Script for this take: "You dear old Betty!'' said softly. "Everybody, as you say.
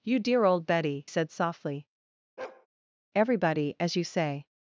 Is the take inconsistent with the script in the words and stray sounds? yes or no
yes